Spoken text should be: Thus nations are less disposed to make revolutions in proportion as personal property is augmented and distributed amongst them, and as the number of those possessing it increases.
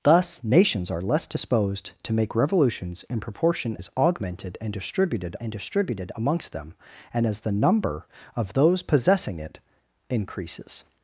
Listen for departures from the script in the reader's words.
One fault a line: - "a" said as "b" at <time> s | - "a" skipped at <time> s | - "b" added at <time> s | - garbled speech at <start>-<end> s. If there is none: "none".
- "as personal property is augmented" said as "is augmented and distributed" at 3.8 s